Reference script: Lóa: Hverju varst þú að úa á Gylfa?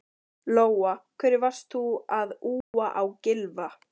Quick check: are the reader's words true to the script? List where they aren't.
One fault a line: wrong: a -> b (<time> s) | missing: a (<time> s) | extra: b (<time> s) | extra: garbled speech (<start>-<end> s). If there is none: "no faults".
no faults